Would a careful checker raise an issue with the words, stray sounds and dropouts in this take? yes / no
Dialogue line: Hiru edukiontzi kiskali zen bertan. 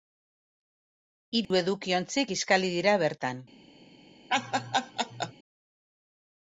yes